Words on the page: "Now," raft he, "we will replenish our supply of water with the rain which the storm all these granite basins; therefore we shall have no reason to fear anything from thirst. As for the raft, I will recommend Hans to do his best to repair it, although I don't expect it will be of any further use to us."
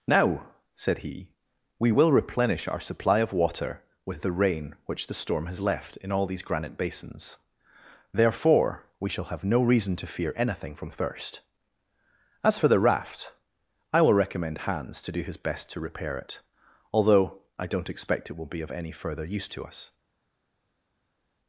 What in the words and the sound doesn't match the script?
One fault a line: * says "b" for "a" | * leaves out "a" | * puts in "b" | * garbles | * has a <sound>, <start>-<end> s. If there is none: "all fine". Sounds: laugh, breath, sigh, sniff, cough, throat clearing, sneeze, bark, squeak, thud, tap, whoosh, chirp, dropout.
* says "said" for "raft"
* puts in "has left in"